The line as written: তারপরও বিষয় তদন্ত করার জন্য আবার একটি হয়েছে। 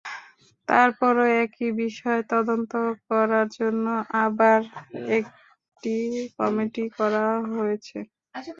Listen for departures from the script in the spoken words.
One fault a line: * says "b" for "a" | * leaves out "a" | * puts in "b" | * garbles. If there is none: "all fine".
* puts in "একই"
* puts in "কমিটি করা"